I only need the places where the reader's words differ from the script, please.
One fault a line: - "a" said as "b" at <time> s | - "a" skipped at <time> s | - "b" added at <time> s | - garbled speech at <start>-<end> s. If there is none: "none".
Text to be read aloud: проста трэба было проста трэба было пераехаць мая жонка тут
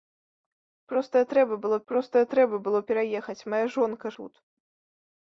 none